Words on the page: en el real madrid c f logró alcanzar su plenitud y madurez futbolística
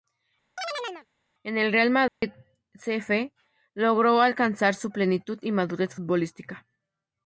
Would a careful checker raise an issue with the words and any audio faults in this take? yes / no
yes